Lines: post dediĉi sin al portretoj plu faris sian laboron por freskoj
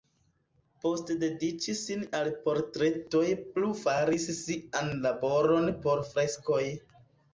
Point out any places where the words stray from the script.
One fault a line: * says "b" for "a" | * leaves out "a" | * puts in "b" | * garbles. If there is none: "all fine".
all fine